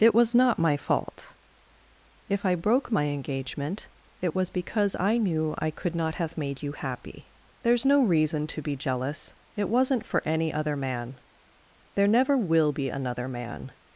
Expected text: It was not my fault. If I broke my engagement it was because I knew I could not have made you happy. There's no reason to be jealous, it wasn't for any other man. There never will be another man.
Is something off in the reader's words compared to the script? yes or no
no